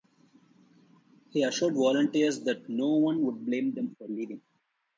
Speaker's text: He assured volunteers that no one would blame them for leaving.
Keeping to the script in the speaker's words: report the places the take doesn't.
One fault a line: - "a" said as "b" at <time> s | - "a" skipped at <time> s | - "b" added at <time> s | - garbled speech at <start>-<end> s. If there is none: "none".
none